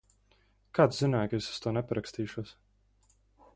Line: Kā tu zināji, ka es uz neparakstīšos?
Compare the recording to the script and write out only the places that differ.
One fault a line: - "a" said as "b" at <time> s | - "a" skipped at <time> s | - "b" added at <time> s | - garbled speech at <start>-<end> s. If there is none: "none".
- "to" added at 1.6 s